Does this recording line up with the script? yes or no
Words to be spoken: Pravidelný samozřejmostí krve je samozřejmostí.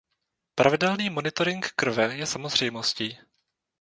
no